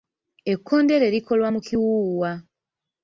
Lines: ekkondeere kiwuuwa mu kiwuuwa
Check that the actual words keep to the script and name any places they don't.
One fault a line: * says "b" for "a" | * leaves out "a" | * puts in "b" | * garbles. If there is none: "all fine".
* says "likolwa" for "kiwuuwa"